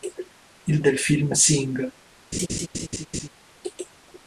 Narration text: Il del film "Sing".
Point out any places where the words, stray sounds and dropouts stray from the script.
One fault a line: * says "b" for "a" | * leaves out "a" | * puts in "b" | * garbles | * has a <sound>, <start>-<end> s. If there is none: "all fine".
* has a laugh, 2.3-3.3 s